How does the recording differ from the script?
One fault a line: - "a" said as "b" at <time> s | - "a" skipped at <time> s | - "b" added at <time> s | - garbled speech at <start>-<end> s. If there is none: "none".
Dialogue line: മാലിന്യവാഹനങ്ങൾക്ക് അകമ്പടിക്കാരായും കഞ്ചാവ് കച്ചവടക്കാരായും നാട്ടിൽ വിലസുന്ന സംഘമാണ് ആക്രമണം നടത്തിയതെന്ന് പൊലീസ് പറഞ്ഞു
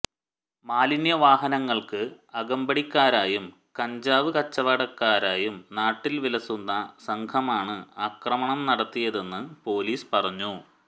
none